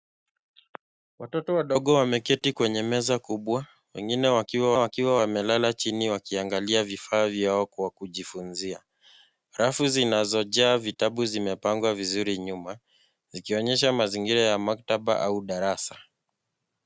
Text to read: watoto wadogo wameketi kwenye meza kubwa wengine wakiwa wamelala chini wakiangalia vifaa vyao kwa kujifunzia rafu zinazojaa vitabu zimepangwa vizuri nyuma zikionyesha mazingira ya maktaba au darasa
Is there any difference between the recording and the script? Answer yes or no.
yes